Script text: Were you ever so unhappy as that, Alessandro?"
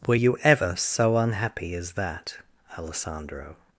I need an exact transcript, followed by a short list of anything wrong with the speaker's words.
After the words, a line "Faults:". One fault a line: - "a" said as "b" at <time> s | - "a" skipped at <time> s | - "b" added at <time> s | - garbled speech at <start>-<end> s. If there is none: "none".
Were you ever so unhappy as that, Alessandro?"
Faults:
none